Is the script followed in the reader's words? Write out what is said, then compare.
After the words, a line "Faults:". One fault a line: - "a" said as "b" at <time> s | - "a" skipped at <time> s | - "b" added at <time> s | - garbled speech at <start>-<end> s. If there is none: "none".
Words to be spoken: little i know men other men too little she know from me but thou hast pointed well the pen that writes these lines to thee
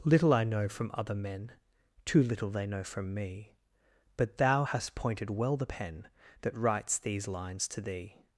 little i know from other men too little they know from me but thou hast pointed well the pen that writes these lines to thee
Faults:
- "men" said as "from" at 0.7 s
- "she" said as "they" at 2.5 s